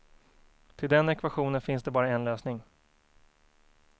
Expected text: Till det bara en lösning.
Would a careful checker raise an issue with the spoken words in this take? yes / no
yes